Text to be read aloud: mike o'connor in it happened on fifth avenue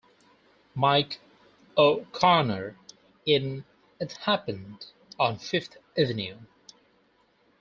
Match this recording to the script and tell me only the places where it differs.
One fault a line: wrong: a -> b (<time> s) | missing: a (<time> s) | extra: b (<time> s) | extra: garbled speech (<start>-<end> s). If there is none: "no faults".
no faults